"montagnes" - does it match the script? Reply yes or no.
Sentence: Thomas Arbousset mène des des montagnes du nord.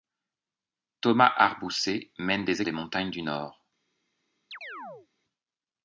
yes